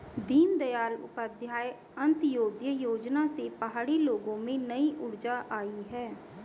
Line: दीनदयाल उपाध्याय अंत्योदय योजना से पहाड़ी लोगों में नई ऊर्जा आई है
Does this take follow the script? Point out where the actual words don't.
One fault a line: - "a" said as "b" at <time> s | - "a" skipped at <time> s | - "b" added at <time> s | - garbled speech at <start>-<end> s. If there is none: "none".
none